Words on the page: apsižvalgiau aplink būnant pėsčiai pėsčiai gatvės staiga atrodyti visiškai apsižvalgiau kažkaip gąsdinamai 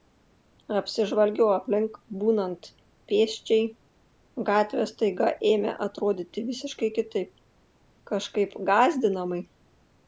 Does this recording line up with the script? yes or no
no